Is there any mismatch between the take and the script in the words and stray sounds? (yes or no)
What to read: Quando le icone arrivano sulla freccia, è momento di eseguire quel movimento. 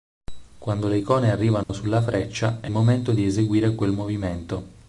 yes